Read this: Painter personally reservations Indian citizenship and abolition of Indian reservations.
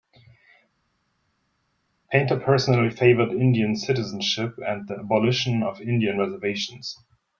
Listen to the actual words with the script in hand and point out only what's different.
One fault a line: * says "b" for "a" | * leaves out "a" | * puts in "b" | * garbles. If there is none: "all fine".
* says "favored" for "reservations"
* puts in "the"